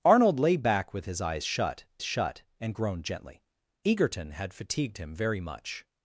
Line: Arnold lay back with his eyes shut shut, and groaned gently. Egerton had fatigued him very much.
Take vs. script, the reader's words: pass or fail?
pass